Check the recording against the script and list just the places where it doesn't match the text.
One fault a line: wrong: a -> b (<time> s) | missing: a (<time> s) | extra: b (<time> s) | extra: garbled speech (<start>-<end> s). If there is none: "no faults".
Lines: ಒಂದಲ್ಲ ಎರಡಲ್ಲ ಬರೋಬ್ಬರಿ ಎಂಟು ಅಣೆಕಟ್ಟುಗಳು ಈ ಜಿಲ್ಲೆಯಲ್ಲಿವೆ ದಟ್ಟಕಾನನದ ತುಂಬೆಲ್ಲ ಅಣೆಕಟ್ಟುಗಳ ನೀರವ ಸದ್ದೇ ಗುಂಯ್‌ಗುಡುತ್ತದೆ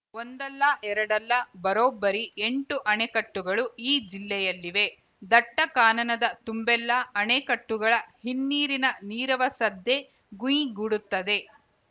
extra: ಹಿನ್ನೀರಿನ (8.2 s)